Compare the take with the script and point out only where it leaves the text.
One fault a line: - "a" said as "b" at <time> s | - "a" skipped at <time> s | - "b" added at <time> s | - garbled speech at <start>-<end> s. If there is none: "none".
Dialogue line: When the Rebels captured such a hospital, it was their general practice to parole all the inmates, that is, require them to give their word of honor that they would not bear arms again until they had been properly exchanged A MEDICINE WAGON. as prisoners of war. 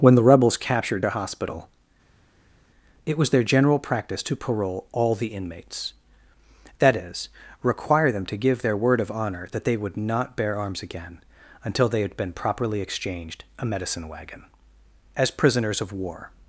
- "such" skipped at 1.1 s